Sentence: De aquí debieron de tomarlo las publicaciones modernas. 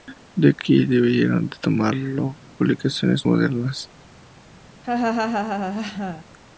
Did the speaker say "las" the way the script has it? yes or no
no